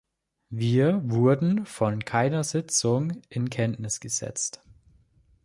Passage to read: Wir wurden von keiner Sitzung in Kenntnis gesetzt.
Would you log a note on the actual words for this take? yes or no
no